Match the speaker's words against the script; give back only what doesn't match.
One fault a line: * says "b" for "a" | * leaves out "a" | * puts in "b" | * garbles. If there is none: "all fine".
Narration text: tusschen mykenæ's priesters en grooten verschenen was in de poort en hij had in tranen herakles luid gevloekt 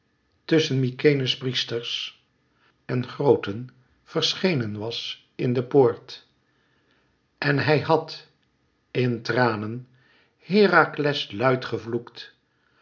all fine